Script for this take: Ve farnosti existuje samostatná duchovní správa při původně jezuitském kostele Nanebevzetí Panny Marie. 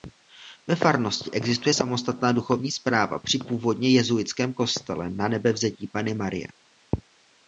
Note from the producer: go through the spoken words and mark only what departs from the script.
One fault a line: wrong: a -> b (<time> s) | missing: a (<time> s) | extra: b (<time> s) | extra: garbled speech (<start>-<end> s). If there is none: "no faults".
no faults